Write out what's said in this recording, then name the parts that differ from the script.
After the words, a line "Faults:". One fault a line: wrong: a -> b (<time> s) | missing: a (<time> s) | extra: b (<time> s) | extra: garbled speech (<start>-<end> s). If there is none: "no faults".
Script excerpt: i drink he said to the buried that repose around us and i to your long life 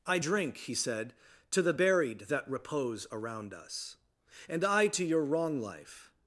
i drink he said to the buried that repose around us and i to your wrong life
Faults:
wrong: long -> wrong (5.2 s)